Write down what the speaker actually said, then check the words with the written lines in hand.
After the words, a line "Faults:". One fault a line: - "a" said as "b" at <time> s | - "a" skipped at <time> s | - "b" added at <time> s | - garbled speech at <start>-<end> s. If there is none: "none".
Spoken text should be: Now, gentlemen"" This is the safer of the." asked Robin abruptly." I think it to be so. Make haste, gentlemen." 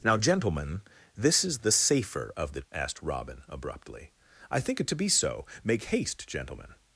Now, gentlemen"" This is the safer of the." asked Robin abruptly." I think it to be so. Make haste, gentlemen."
Faults:
none